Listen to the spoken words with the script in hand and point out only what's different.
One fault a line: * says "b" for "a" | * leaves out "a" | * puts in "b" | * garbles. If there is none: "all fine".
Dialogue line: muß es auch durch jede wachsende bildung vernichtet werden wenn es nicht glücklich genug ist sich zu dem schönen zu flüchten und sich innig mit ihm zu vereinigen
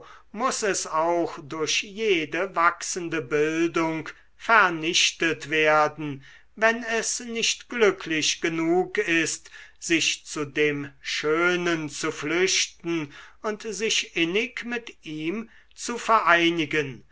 all fine